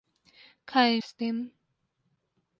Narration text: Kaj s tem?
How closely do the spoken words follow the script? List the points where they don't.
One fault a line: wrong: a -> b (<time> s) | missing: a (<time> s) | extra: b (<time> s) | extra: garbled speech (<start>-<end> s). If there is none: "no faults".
no faults